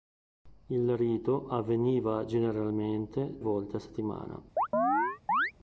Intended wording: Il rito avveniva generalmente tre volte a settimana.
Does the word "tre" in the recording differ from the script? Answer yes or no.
yes